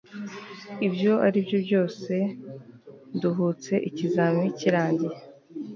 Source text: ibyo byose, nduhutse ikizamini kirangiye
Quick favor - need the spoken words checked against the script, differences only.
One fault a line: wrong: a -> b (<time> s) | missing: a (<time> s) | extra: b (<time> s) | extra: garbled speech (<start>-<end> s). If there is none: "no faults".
extra: aribyo (1.3 s)